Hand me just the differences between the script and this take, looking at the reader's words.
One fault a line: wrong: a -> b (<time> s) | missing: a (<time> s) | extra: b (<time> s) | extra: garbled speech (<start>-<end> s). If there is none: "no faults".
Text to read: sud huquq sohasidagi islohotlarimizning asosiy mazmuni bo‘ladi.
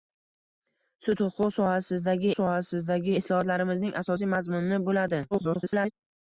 extra: sohasidagi (2.4 s)
extra: garbled speech (5.3-5.9 s)